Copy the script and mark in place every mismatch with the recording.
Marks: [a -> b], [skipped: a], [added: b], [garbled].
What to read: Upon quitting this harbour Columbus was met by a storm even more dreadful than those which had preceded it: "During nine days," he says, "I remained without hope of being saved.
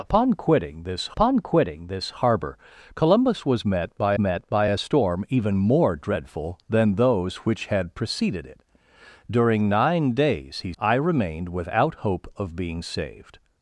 Upon quitting this [added: upon quitting this] harbour Columbus was met by [added: met by] a storm even more dreadful than those which had preceded it: "During nine days," he [skipped: says,] "I remained without hope of being saved.